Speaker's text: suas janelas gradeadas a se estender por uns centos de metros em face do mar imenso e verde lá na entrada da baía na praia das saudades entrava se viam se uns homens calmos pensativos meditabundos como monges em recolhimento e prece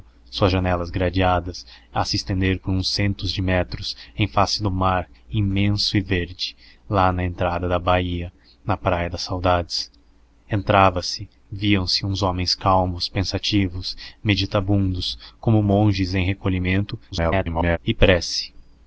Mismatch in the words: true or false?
true